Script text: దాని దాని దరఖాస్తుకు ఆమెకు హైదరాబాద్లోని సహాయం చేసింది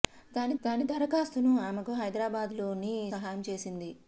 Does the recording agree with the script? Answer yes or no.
yes